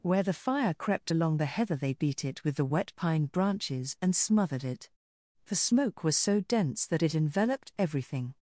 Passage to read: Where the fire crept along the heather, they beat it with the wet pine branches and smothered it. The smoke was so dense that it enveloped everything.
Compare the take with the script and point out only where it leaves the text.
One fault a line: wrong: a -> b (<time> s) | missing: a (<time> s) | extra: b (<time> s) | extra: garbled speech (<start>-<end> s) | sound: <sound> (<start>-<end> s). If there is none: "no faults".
no faults